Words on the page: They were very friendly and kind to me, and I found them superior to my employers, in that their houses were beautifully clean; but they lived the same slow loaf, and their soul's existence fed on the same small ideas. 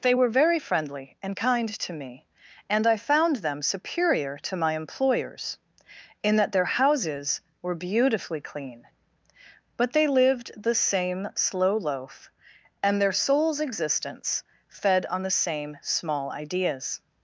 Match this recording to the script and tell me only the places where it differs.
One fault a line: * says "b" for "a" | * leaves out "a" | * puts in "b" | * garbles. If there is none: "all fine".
all fine